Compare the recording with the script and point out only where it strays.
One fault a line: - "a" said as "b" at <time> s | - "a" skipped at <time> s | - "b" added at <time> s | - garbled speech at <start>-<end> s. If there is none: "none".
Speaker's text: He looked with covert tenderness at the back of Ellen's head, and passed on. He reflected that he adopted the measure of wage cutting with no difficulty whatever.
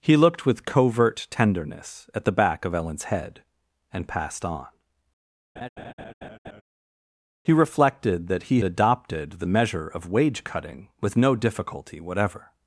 none